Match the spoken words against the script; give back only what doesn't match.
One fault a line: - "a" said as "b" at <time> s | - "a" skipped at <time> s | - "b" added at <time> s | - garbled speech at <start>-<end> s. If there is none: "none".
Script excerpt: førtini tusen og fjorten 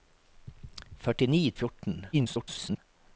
- "tusen" skipped at 1.4 s
- garbled speech at 2.1-2.8 s